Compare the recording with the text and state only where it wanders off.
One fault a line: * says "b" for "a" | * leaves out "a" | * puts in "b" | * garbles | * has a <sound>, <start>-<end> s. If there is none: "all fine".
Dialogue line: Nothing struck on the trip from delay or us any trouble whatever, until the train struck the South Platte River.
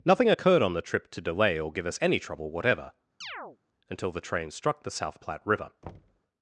* says "occurred" for "struck"
* says "to" for "from"
* puts in "give"
* has a chirp, 3.2-3.6 s
* has a thud, 5.8-6.2 s